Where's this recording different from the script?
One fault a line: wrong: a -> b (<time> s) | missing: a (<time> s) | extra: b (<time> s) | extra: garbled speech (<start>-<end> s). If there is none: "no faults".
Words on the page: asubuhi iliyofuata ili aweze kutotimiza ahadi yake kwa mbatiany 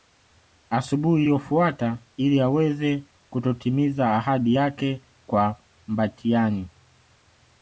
no faults